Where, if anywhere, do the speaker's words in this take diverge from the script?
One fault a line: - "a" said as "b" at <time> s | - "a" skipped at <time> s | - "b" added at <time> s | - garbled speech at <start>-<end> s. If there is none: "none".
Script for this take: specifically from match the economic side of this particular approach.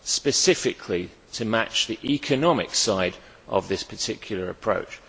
- "from" said as "to" at 1.3 s